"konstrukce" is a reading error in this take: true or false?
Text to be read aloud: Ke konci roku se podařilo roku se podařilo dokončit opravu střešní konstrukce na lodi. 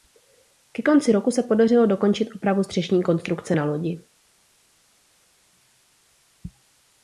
false